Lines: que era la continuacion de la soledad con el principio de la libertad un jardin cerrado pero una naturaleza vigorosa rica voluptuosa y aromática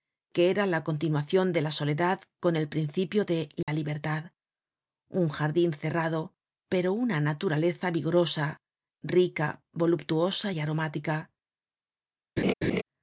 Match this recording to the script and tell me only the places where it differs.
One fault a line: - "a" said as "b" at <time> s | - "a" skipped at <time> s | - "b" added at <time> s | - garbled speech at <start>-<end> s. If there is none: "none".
none